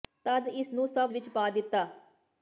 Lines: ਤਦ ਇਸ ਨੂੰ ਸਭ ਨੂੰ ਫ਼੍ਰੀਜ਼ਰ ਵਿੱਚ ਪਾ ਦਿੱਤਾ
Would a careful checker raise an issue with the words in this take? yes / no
yes